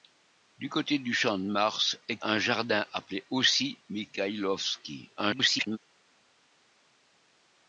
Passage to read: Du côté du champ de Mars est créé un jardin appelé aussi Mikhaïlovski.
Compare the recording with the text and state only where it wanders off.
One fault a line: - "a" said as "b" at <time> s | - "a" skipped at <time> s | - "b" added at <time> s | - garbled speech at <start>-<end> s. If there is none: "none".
- "créé" skipped at 2.2 s
- garbled speech at 5.2-5.8 s